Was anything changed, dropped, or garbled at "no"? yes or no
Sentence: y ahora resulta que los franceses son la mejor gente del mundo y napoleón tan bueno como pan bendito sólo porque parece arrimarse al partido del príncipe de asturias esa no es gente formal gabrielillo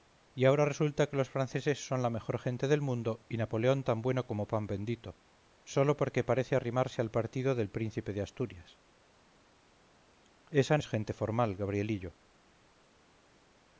yes